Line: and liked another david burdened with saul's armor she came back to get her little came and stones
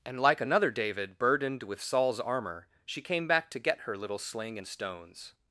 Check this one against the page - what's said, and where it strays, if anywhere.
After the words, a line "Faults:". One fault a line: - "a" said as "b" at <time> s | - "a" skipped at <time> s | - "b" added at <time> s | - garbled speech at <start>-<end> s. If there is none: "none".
and like another david burdened with saul's armor she came back to get her little sling and stones
Faults:
- "liked" said as "like" at 0.2 s
- "came" said as "sling" at 4.2 s